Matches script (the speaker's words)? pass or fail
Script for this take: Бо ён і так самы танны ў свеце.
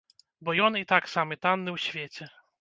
pass